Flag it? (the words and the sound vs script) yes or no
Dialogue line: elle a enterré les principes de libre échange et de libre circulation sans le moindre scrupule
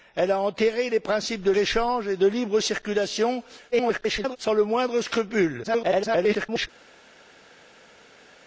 yes